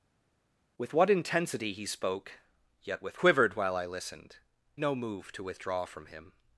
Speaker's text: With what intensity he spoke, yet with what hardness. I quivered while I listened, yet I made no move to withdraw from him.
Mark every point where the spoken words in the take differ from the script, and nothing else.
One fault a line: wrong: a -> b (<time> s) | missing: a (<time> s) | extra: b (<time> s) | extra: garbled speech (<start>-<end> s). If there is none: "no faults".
missing: what hardness I (3.2 s)
missing: yet I made (4.4 s)